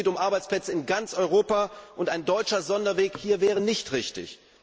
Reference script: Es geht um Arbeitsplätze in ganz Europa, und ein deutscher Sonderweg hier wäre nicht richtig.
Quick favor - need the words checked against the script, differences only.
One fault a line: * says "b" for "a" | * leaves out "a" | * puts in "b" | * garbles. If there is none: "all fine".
all fine